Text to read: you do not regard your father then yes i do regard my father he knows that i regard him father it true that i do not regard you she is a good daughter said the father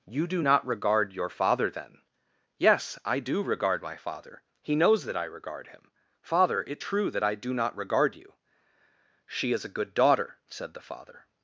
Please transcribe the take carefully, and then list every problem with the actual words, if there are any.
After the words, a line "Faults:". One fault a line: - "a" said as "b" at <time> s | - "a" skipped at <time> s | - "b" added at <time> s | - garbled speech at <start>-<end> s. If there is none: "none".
you do not regard your father then yes i do regard my father he knows that i regard him father it true that i do not regard you she is a good daughter said the father
Faults:
none